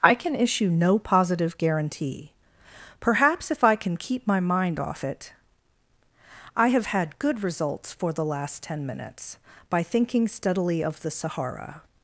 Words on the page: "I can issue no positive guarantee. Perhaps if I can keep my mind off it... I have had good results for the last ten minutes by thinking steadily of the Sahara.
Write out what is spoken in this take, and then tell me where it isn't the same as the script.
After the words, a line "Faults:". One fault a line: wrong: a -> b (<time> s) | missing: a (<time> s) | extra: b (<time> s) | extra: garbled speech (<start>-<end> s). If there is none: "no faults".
"I can issue no positive guarantee. Perhaps if I can keep my mind off it... I have had good results for the last ten minutes by thinking steadily of the Sahara.
Faults:
no faults